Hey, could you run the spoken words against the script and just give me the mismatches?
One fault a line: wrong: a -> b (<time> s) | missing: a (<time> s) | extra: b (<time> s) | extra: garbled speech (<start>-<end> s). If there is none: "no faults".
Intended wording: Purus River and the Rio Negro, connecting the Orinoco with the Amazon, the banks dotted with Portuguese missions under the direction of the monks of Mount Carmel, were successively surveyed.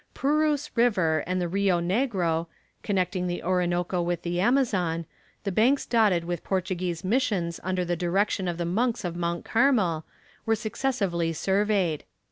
no faults